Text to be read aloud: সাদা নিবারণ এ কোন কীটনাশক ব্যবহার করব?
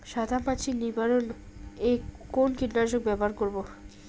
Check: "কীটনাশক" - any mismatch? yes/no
no